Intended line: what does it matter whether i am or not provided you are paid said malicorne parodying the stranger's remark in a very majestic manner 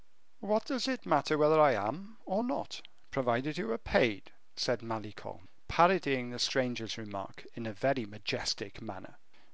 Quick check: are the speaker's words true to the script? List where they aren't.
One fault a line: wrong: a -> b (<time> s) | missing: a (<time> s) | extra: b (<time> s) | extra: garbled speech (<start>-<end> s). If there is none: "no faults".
no faults